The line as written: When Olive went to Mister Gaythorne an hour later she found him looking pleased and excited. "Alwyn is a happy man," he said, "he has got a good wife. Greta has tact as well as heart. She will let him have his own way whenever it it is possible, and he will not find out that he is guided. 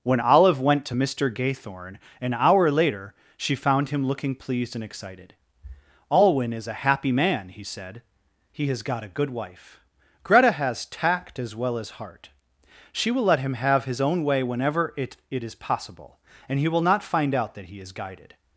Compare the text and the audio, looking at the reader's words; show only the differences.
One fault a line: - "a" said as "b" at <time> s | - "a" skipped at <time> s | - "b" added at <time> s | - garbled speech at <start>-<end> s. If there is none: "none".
none